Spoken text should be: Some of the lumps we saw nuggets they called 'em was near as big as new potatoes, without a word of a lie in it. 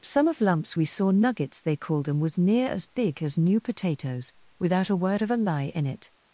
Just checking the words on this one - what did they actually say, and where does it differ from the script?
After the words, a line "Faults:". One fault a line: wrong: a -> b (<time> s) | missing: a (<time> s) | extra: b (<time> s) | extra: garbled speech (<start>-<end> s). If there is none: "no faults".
Some of lumps we saw nuggets they called 'em was near as big as new potatoes, without a word of a lie in it.
Faults:
missing: the (0.4 s)